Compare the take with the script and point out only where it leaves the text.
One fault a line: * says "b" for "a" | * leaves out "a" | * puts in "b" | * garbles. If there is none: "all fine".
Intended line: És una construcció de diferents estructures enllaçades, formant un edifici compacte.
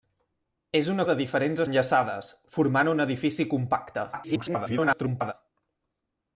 * leaves out "construcció"
* leaves out "estructures"
* garbles